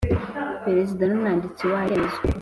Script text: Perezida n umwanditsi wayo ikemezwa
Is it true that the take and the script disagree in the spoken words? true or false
false